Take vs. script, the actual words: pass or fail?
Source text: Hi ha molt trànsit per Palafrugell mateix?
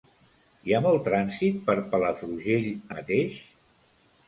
pass